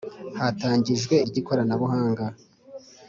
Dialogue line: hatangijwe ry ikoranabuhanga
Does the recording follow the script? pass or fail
pass